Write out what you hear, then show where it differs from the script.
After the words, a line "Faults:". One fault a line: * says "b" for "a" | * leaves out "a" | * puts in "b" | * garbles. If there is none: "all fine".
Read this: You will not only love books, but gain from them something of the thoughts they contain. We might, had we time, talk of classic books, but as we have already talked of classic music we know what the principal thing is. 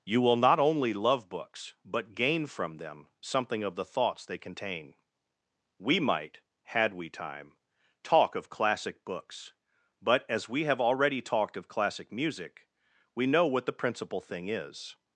You will not only love books, but gain from them something of the thoughts they contain. We might, had we time, talk of classic books, but as we have already talked of classic music we know what the principal thing is.
Faults:
all fine